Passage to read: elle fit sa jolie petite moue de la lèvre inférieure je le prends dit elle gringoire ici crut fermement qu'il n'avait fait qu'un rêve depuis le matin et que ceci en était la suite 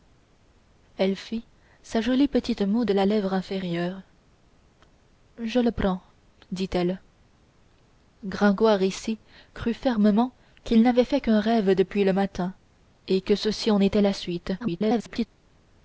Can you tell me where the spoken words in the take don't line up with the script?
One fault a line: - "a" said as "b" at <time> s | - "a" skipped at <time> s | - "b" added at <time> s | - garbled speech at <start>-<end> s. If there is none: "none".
- garbled speech at 14.6-15.3 s